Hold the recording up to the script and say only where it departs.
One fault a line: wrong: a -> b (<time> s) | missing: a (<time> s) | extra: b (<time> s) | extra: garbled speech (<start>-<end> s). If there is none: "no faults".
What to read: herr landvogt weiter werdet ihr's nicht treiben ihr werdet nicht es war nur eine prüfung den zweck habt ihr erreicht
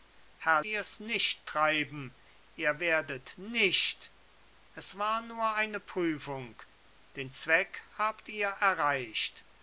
missing: landvogt weiter werdet (0.6 s)